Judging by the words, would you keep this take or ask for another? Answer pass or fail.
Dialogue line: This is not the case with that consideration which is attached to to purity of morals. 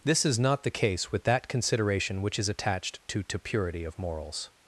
pass